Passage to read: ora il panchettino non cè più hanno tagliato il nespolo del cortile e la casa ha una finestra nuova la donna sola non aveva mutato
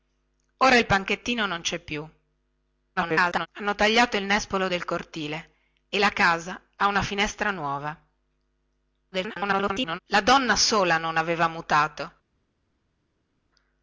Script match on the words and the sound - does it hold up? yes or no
no